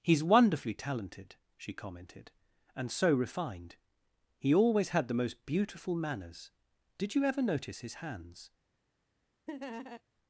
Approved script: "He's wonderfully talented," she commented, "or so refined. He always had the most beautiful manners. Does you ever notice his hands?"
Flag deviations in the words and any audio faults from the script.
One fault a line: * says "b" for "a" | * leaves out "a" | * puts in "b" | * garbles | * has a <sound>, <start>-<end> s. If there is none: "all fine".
* says "and" for "or"
* says "Did" for "Does"
* has a laugh, 9.5-10.0 s